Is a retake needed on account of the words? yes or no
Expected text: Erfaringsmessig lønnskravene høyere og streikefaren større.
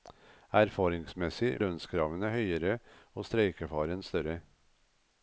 no